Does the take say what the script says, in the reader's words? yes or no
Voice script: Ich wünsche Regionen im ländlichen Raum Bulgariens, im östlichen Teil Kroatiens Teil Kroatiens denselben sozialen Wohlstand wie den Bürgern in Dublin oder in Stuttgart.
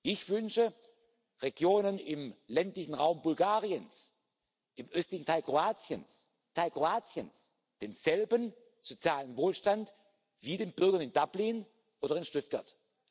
yes